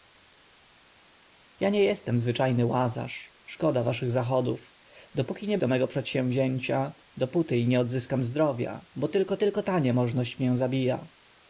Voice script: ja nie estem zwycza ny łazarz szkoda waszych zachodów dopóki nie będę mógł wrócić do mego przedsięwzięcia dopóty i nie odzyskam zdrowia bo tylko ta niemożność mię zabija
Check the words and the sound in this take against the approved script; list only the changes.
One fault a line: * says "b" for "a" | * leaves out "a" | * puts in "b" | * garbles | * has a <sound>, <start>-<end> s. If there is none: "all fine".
* leaves out "będę mógł wrócić"
* puts in "tylko"